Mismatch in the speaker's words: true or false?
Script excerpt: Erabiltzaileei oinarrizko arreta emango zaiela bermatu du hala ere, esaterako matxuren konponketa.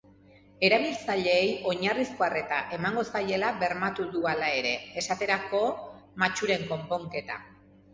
false